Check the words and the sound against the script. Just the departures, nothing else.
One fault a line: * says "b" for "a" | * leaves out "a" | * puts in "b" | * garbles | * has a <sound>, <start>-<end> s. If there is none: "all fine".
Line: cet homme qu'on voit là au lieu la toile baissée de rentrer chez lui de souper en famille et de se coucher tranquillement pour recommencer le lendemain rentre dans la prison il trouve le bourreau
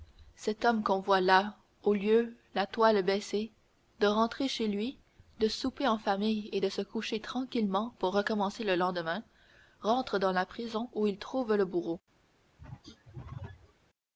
* puts in "où"
* has a throat clearing, 12.6-13.7 s